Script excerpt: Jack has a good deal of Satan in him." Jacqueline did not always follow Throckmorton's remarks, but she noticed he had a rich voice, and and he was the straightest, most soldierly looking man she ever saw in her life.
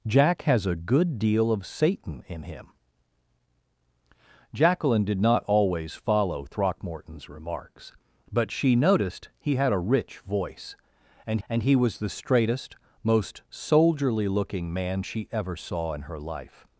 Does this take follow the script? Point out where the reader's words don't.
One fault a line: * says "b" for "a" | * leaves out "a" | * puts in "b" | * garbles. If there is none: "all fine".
all fine